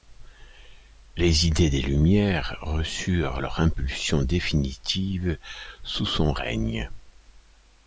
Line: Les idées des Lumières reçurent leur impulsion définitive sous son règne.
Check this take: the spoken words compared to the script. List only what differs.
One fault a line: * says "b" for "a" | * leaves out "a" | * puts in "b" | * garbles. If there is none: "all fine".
all fine